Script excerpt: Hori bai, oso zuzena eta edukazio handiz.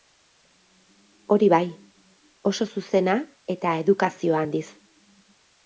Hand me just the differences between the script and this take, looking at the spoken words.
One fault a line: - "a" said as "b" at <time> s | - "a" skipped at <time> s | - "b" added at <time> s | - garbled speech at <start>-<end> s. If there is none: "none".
none